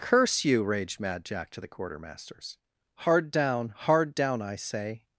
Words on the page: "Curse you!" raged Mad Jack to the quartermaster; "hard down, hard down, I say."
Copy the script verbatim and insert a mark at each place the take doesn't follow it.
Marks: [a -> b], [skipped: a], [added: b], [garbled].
"Curse you!" raged Mad Jack to the [quartermaster; -> quartermasters] "hard down, hard down, I say."